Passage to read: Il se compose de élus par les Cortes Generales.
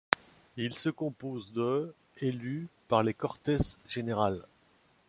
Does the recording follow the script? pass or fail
pass